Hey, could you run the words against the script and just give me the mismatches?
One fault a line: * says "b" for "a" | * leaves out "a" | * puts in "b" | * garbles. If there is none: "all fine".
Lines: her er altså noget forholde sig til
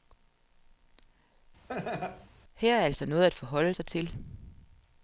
* puts in "at"